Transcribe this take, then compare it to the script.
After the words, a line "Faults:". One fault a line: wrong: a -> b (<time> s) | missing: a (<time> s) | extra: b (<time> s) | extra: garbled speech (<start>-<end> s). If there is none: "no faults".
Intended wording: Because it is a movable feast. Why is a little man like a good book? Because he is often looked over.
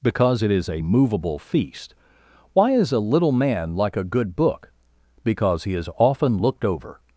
Because it is a movable feast. Why is a little man like a good book? Because he is often looked over.
Faults:
no faults